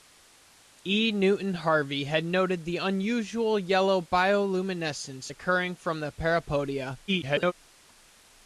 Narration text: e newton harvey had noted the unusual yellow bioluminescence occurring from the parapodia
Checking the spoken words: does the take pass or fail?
fail